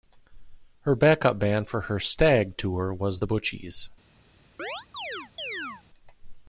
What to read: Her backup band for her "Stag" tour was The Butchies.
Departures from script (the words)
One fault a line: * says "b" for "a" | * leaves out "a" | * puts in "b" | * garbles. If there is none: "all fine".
all fine